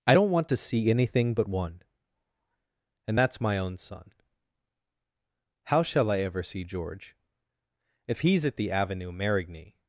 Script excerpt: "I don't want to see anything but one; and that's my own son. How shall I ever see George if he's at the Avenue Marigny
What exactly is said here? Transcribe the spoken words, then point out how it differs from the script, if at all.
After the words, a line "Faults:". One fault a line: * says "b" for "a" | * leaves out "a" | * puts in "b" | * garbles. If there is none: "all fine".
"I don't want to see anything but one; and that's my own son. How shall I ever see George if he's at the Avenue Marigny
Faults:
all fine